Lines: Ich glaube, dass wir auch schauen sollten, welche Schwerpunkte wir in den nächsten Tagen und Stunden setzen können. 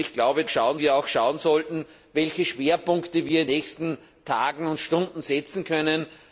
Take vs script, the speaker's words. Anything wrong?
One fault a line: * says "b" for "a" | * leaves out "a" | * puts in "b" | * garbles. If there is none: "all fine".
* says "schauen" for "dass"
* leaves out "den"